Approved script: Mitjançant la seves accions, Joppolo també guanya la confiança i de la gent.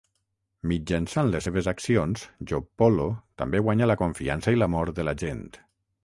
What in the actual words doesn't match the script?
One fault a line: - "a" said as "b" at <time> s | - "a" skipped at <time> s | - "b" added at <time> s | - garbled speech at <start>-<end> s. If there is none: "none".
- "la" said as "les" at 1.3 s
- "l'amor" added at 4.6 s